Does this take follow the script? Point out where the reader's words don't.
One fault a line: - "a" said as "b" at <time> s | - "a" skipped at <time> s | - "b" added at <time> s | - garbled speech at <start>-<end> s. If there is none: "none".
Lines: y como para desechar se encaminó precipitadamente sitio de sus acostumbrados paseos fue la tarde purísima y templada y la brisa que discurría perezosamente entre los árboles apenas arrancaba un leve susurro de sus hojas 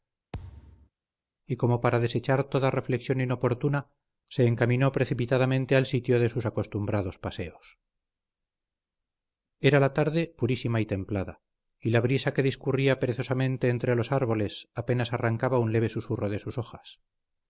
- "toda reflexión inoportuna" added at 2.4 s
- "al" added at 5.8 s
- "fue" said as "era" at 9.6 s